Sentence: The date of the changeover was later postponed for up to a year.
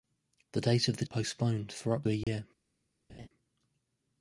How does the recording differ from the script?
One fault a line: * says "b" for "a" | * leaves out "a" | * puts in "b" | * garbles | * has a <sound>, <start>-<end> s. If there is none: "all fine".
* leaves out "changeover was later"
* leaves out "to"
* has a dropout, 2.2-2.3 s
* has a laugh, 3.1-3.3 s